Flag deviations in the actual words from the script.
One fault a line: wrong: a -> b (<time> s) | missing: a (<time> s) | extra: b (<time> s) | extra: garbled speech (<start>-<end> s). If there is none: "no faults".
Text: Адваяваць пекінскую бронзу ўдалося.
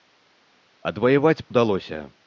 missing: пекінскую бронзу (1.4 s)